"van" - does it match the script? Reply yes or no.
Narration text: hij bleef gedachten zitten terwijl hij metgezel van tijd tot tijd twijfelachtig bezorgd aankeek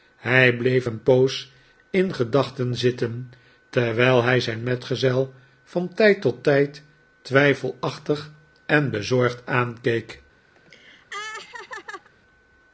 yes